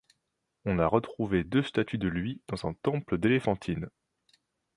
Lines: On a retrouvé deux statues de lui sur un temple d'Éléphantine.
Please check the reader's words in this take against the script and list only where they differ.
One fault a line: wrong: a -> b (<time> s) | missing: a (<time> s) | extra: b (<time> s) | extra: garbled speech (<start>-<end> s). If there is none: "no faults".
wrong: sur -> dans (2.5 s)